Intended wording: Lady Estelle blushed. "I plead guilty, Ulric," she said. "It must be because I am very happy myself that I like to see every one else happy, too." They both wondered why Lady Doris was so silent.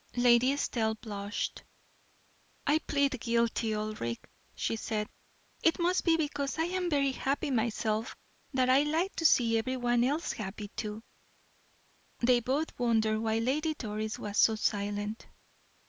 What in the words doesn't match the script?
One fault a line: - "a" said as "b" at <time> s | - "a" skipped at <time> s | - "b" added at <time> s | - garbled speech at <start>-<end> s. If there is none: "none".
none